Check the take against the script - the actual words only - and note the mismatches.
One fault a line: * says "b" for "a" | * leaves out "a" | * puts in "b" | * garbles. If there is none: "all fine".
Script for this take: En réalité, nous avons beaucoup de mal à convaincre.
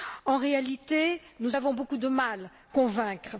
* leaves out "à"